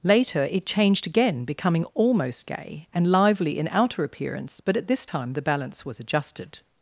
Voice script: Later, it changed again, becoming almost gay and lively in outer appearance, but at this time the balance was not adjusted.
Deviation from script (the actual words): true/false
true